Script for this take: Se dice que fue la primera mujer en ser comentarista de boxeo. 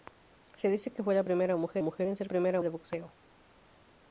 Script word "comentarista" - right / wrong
wrong